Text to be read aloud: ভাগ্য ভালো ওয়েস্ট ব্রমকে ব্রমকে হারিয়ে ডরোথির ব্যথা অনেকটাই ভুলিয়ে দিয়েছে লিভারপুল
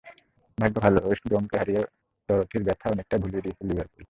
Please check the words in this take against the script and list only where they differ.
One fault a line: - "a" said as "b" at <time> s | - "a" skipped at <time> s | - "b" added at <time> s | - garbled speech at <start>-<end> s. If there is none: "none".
- "ব্রমকে" skipped at 1.6 s